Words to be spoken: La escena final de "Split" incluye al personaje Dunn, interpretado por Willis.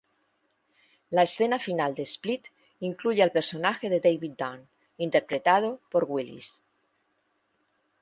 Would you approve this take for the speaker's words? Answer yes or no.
no